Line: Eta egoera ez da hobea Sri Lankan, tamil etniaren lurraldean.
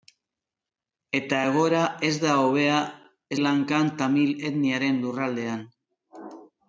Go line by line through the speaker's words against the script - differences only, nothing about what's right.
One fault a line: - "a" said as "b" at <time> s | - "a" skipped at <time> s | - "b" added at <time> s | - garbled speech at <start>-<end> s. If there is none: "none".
- "Sri" skipped at 2.8 s